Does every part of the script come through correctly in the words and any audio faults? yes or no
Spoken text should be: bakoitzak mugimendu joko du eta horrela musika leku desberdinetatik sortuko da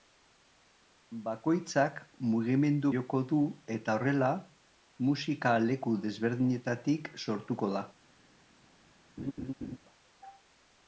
no